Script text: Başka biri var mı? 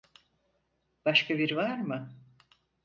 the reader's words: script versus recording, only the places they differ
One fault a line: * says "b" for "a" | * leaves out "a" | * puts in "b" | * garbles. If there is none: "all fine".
all fine